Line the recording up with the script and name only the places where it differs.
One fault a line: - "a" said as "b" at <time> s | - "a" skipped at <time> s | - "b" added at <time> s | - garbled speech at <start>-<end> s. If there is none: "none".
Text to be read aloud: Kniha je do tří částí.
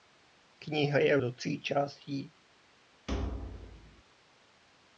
none